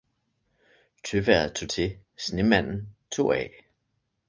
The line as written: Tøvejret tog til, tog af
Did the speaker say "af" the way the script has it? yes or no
yes